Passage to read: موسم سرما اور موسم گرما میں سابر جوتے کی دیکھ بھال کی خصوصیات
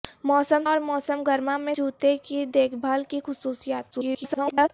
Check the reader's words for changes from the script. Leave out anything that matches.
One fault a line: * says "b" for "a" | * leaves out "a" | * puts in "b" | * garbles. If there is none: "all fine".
* leaves out "سرما"
* leaves out "سابر"
* garbles